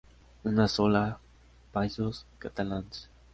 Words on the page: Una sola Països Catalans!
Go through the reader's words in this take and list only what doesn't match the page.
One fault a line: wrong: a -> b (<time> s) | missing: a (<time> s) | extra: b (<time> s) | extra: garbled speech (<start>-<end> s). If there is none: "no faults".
no faults